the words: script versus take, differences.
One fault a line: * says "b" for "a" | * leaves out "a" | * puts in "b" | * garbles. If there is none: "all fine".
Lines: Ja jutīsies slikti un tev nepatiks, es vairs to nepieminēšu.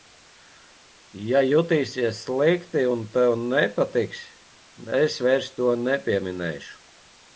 all fine